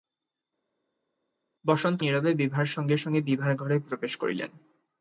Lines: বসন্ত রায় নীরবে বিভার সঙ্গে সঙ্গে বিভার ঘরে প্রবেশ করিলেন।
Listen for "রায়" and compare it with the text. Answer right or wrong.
wrong